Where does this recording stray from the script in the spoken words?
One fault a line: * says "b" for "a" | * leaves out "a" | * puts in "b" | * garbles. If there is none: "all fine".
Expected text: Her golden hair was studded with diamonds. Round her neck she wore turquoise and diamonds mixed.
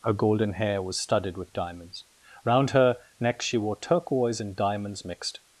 all fine